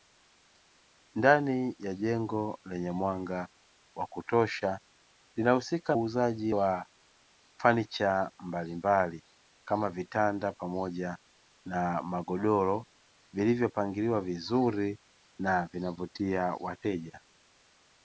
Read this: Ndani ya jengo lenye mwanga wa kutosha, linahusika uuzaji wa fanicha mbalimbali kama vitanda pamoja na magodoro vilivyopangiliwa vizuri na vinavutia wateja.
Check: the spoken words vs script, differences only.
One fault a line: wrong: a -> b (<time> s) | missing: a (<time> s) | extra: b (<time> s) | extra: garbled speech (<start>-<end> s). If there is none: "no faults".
no faults